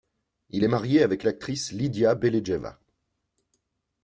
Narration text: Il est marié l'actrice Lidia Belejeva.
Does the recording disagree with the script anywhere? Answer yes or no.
yes